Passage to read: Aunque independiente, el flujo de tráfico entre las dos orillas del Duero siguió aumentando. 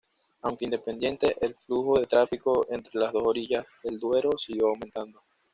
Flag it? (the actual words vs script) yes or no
no